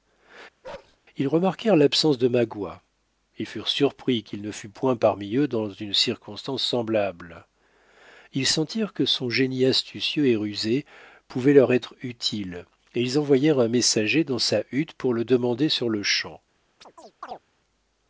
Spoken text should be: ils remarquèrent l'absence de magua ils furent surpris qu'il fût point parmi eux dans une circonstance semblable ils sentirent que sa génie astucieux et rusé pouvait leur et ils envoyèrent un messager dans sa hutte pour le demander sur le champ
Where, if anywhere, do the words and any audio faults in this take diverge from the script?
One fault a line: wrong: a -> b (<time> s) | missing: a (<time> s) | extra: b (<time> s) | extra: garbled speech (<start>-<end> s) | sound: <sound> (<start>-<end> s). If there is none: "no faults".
sound: bark (0.6-1.0 s)
extra: ne (4.4 s)
wrong: sa -> son (9.0 s)
extra: être utile (11.7 s)
sound: chirp (16.8-17.4 s)